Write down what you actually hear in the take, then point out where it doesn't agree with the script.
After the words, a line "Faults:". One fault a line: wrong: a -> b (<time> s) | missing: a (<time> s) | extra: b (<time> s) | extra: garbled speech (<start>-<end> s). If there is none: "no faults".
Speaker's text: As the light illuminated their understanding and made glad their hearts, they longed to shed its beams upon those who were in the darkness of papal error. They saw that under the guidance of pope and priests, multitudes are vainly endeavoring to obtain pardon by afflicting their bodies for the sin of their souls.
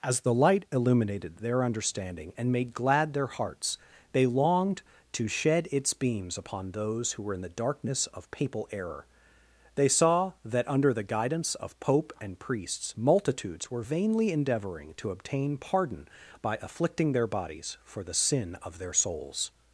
As the light illuminated their understanding and made glad their hearts, they longed to shed its beams upon those who were in the darkness of papal error. They saw that under the guidance of pope and priests, multitudes were vainly endeavoring to obtain pardon by afflicting their bodies for the sin of their souls.
Faults:
wrong: are -> were (13.7 s)